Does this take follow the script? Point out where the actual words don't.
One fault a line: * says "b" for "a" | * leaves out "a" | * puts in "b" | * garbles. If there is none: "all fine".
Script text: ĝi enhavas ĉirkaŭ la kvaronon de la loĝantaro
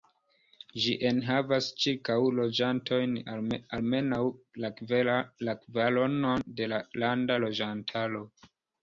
* puts in "loĝantojn almenaŭ"
* puts in "landa"